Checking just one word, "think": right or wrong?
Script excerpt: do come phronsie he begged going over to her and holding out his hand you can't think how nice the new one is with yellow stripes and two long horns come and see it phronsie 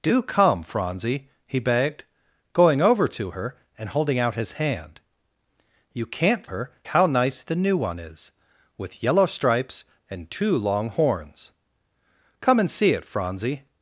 wrong